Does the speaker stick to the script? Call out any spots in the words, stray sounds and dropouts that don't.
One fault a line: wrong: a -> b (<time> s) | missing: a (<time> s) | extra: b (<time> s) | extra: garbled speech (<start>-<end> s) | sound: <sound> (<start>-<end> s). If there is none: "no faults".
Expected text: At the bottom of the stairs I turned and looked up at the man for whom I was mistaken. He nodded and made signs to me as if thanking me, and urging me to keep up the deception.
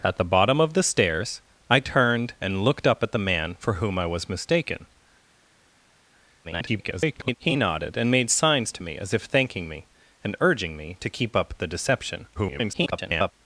extra: garbled speech (6.4-7.4 s)
extra: garbled speech (12.3-13.3 s)